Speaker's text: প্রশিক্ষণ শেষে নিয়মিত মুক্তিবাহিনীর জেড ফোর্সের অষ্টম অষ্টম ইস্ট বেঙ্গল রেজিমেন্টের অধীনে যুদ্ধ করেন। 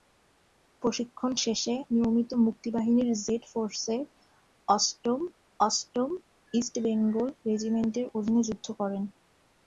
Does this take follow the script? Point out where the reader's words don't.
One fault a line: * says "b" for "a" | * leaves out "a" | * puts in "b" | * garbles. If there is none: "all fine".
all fine